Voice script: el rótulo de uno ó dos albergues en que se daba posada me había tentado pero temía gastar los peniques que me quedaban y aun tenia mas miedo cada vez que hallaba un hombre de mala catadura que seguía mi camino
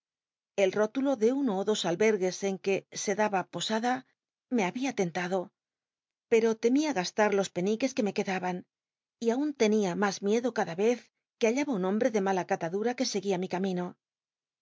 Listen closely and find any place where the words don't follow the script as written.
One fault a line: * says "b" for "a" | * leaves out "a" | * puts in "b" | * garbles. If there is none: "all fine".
all fine